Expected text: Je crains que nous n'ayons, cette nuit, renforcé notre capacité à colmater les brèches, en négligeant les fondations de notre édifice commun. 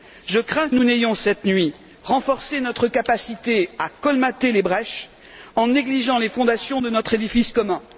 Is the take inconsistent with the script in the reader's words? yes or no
yes